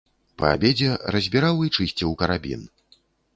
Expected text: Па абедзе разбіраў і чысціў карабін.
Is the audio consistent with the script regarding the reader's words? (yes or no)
yes